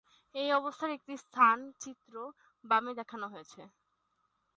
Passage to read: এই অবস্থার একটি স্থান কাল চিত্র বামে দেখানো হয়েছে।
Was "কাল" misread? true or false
true